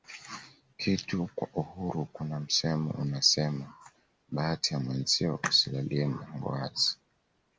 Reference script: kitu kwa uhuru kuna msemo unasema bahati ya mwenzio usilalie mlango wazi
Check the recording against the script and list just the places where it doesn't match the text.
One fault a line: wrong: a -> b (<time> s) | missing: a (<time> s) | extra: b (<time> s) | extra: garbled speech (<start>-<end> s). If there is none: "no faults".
no faults